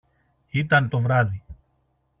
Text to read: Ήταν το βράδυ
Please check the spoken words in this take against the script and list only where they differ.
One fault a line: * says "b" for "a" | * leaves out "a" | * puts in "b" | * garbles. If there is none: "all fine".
all fine